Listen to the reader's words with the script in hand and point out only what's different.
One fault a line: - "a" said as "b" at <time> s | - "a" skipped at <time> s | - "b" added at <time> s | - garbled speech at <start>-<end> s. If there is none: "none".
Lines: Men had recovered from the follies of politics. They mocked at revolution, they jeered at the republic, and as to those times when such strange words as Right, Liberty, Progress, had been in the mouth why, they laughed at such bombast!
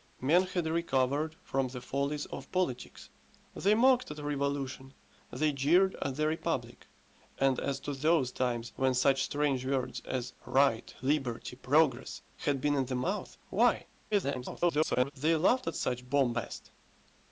- garbled speech at 14.1-15.1 s